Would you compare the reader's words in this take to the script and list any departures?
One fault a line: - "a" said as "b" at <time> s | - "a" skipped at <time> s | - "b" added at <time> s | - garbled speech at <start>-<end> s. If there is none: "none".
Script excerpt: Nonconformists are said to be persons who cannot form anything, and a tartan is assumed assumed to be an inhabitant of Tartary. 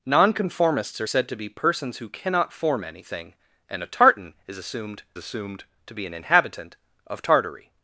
none